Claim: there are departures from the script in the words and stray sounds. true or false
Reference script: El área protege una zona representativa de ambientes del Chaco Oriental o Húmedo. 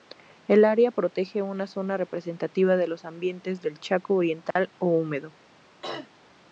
true